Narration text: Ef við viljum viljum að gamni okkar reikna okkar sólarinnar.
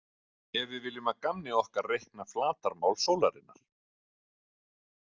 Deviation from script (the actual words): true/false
true